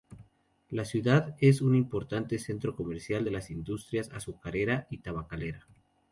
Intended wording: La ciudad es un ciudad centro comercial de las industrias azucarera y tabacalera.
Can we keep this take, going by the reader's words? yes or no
no